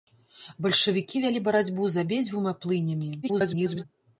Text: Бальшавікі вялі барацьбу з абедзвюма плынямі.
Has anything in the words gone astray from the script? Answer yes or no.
yes